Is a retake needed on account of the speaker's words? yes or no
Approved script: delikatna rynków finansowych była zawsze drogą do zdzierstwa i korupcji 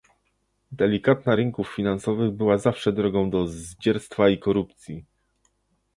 no